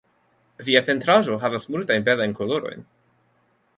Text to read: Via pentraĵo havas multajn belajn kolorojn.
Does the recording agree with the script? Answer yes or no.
yes